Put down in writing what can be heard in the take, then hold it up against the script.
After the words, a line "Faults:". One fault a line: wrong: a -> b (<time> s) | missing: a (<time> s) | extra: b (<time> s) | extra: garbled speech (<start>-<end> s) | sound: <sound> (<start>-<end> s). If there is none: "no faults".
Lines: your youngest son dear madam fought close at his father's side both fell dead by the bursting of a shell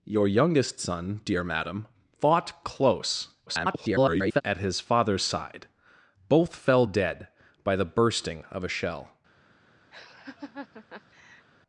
your youngest son dear madam fought close [garbled] at his father's side both fell dead by the bursting of a shell
Faults:
extra: garbled speech (3.5-4.4 s)
sound: laugh (9.9-11.5 s)